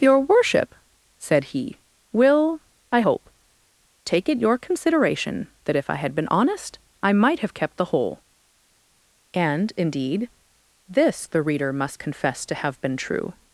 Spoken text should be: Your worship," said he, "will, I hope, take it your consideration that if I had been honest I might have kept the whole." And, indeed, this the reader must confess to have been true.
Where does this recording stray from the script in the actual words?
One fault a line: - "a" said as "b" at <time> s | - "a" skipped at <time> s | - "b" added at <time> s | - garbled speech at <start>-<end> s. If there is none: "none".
none